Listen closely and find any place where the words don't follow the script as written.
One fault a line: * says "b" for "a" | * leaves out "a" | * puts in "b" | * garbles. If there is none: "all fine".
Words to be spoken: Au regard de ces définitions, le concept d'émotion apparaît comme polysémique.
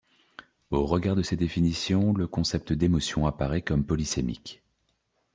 all fine